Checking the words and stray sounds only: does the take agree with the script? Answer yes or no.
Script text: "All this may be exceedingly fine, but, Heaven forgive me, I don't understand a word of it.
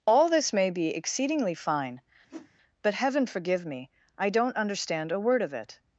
no